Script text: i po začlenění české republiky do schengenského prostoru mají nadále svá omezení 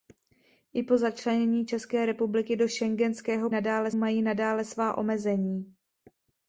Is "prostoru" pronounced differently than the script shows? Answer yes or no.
yes